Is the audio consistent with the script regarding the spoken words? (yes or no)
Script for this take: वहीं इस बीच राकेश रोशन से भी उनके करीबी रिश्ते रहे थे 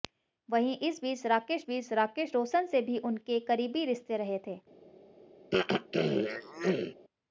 no